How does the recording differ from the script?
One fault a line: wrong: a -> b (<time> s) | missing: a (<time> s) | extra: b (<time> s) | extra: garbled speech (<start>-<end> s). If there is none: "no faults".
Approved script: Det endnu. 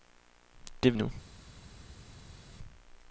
no faults